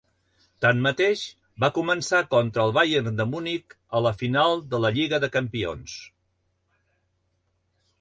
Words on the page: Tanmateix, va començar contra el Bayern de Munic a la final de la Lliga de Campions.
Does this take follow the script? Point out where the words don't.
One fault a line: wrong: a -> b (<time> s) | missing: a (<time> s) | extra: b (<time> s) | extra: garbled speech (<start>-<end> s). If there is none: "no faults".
no faults